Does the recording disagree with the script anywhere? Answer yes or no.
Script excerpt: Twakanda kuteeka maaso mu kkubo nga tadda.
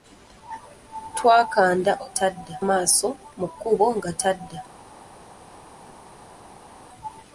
yes